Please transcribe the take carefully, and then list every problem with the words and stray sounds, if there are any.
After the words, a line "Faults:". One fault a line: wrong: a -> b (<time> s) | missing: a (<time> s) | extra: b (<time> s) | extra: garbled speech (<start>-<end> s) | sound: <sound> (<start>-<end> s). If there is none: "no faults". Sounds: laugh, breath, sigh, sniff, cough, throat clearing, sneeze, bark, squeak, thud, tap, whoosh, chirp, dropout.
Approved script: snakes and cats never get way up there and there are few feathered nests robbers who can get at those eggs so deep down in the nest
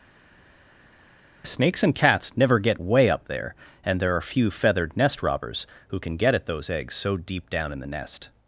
snakes and cats never get way up there and there are few feathered nest robbers who can get at those eggs so deep down in the nest
Faults:
wrong: nests -> nest (5.0 s)